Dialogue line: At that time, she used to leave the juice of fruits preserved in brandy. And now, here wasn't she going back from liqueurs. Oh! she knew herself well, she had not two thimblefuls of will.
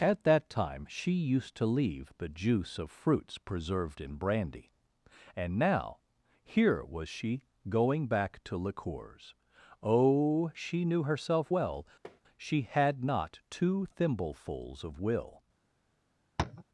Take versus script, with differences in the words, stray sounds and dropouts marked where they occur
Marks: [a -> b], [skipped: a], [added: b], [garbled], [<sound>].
At that time, she used to leave the juice of fruits preserved in brandy. And now, here [wasn't -> was] she going back [from -> to] liqueurs. Oh! she knew herself well, [tap] she had not two thimblefuls of will. [tap]